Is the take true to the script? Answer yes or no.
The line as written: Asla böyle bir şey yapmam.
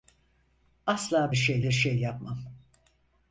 no